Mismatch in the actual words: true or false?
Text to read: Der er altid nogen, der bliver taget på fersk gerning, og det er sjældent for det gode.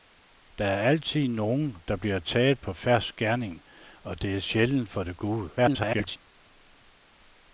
true